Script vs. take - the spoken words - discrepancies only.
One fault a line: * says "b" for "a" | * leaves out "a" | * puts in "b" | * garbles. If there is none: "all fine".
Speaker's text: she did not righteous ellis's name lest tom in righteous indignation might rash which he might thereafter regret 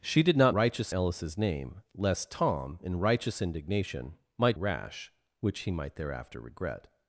all fine